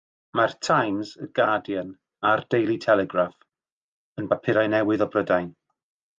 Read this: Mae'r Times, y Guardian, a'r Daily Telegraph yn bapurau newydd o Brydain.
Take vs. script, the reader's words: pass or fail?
pass